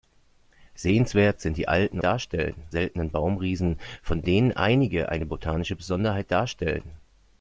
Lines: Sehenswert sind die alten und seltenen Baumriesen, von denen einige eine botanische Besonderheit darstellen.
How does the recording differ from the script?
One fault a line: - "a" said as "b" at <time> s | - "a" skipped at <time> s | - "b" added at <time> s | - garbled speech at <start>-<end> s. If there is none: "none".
- "und" said as "darstellen" at 2.0 s